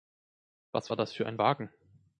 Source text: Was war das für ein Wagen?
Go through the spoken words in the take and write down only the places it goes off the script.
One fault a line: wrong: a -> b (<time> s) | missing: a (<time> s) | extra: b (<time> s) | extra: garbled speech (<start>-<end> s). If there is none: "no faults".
no faults